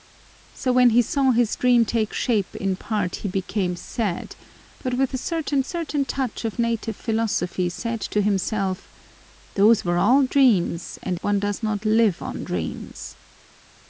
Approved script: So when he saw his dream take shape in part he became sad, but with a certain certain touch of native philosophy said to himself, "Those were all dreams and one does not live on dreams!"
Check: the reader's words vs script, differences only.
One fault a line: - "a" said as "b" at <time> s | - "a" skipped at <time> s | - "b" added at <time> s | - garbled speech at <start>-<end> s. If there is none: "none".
none